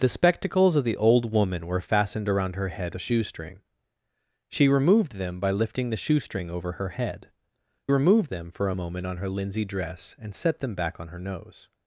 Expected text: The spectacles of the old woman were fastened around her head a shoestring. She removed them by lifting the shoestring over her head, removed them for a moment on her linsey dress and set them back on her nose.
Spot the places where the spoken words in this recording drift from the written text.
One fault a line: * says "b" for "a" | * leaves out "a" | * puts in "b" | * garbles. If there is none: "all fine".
all fine